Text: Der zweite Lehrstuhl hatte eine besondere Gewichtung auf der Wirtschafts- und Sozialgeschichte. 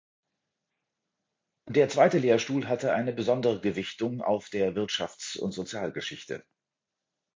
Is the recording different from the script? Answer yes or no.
no